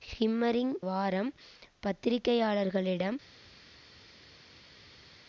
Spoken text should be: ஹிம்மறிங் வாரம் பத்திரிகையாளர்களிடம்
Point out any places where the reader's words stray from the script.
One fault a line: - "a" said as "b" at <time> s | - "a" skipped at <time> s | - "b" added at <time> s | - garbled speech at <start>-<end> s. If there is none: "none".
none